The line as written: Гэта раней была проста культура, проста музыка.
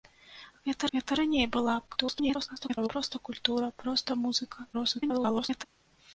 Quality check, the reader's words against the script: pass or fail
fail